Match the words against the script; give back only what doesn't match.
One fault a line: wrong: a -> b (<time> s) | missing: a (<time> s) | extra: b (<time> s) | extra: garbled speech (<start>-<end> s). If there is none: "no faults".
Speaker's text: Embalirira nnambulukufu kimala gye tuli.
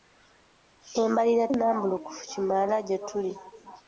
no faults